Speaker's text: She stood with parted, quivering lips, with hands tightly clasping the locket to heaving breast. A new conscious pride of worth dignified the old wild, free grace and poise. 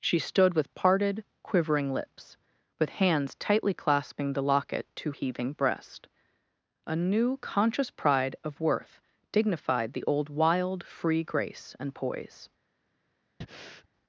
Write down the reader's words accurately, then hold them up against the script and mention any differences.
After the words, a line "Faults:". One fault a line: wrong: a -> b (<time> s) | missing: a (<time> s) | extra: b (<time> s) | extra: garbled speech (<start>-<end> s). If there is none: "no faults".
She stood with parted, quivering lips, with hands tightly clasping the locket to heaving breast. A new conscious pride of worth dignified the old wild, free grace and poise.
Faults:
no faults